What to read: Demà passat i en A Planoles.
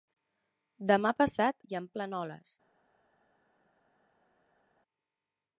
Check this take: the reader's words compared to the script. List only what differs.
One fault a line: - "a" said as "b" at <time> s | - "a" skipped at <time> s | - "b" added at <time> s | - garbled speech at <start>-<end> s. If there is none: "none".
none